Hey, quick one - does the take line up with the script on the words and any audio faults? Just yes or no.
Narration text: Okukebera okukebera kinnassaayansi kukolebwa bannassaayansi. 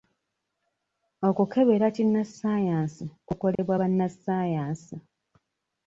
no